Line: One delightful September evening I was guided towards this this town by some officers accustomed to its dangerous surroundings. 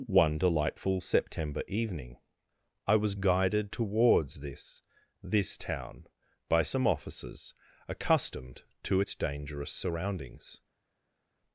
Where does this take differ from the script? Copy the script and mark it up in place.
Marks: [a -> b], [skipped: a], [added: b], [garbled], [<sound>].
One delightful September evening I was guided towards this this town by some officers accustomed to its dangerous surroundings.